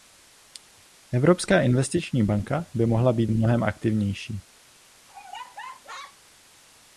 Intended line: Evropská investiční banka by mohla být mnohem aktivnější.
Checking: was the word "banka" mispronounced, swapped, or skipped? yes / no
no